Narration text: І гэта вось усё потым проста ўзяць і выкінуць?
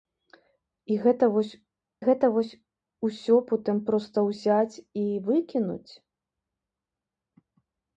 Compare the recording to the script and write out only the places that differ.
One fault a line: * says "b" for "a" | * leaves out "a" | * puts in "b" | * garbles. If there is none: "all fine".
* puts in "гэта вось"